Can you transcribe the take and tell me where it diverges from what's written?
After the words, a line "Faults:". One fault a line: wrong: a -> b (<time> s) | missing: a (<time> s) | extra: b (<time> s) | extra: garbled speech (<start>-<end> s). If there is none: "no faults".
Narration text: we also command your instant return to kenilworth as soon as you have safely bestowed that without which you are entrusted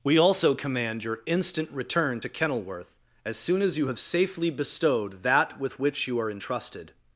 we also command your instant return to kenilworth as soon as you have safely bestowed that with which you are entrusted
Faults:
wrong: without -> with (5.6 s)